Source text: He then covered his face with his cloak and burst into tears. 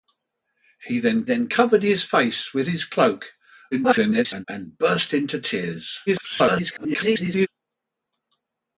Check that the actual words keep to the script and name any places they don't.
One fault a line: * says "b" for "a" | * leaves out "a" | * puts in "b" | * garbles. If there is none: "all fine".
* puts in "then"
* garbles
* garbles